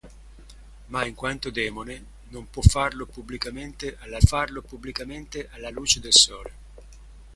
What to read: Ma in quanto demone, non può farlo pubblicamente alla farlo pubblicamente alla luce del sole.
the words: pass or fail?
pass